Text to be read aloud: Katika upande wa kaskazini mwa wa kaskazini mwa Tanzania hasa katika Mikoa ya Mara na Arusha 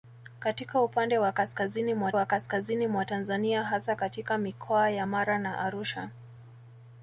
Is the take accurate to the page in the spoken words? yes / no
yes